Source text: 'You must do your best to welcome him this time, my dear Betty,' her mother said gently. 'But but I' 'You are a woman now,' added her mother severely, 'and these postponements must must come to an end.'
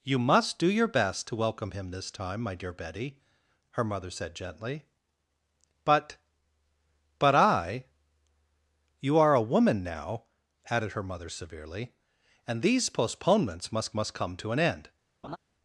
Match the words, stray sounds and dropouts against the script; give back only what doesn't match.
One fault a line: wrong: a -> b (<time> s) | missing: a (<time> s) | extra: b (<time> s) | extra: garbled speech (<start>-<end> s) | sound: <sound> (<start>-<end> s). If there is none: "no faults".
sound: laugh (15.2-15.4 s)